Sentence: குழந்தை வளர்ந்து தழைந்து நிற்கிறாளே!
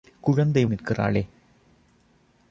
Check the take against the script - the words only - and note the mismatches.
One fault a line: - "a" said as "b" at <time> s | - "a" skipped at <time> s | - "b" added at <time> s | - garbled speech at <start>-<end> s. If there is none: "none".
- "வளர்ந்து தழைந்து" skipped at 0.7 s